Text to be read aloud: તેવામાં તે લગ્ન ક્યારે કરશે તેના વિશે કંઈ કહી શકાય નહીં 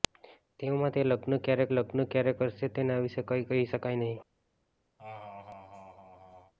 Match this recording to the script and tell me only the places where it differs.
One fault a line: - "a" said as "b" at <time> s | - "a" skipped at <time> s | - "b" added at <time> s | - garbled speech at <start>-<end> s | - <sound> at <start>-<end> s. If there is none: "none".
- "લગ્ન ક્યારે" added at 1.7 s
- laugh at 5.0-6.5 s